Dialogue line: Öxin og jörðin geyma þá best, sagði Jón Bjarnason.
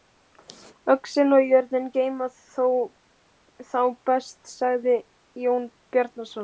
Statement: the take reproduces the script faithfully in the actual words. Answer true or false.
true